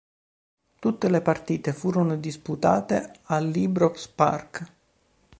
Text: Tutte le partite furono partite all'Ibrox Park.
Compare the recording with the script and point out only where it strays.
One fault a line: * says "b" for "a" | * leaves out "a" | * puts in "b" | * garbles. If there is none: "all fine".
* says "disputate" for "partite"